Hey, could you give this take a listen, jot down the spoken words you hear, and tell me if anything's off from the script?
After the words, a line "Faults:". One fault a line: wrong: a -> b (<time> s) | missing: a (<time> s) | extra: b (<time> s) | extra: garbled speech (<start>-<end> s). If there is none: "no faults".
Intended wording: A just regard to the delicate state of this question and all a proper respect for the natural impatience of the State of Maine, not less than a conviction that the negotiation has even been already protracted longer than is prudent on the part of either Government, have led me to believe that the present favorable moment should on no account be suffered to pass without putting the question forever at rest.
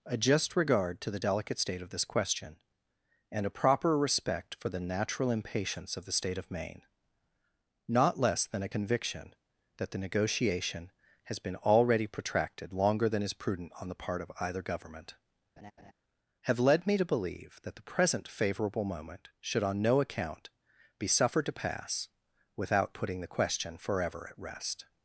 A just regard to the delicate state of this question and a proper respect for the natural impatience of the State of Maine, not less than a conviction that the negotiation has been already protracted longer than is prudent on the part of either Government, have led me to believe that the present favorable moment should on no account be suffered to pass without putting the question forever at rest.
Faults:
missing: all (3.4 s)
missing: even (11.4 s)